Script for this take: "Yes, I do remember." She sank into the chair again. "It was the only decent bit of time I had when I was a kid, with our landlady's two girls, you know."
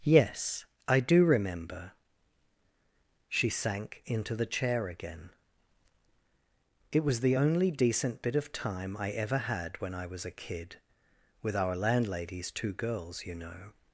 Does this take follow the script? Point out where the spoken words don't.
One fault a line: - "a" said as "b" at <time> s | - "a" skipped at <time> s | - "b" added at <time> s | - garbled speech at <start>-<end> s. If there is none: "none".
- "ever" added at 9.1 s